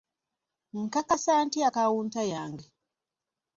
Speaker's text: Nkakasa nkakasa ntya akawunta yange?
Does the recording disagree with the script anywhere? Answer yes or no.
yes